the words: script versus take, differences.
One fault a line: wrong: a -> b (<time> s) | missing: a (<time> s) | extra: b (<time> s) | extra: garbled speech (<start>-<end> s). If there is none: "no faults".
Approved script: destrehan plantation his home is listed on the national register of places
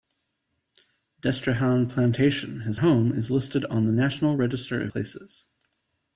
no faults